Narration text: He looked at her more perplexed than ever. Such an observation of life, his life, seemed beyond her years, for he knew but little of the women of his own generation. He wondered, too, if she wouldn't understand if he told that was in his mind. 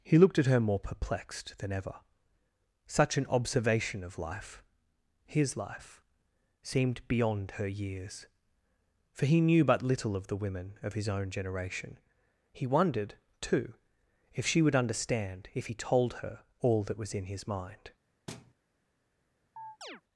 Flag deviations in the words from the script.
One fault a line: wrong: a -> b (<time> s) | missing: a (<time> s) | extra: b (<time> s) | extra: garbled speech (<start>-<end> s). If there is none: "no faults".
wrong: wouldn't -> would (14.6 s)
extra: her all (16.1 s)